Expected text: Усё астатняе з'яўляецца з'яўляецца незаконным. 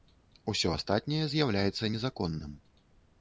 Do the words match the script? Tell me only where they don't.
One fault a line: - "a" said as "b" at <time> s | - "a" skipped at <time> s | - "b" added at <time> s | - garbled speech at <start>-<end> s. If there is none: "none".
- "з'яўляецца" skipped at 1.9 s